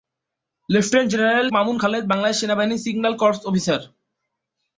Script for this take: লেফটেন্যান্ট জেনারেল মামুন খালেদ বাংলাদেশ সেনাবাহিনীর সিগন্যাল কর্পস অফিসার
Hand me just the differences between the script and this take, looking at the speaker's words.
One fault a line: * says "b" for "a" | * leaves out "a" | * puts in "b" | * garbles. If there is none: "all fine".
all fine